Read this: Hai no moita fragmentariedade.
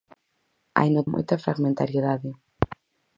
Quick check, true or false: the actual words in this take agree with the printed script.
true